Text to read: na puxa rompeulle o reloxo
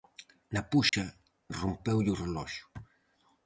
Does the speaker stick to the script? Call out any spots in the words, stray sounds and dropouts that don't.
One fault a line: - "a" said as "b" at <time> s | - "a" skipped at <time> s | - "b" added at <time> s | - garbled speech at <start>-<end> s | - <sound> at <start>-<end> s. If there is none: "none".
- dropout at 0.9-0.9 s